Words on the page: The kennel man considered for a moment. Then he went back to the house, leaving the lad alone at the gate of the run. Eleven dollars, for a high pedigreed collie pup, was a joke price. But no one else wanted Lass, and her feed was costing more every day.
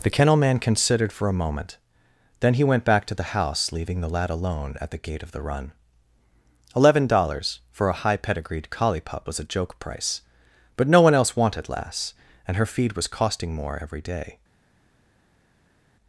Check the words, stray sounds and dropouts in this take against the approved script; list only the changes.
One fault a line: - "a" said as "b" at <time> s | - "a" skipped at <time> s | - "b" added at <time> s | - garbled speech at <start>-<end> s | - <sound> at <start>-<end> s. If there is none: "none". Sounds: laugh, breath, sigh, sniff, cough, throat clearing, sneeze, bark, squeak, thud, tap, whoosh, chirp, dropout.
none